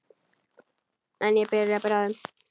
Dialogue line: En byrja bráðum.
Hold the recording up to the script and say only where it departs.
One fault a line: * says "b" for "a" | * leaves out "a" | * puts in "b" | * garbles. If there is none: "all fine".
* puts in "ég"